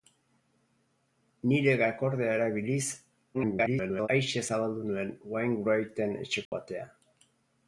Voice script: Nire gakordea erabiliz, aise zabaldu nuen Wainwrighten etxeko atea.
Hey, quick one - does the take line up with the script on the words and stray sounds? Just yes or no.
no